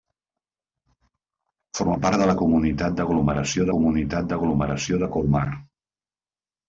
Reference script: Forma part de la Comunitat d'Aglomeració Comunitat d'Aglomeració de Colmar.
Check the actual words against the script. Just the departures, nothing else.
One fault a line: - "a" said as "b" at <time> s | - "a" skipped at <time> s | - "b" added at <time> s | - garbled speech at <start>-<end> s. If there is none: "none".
none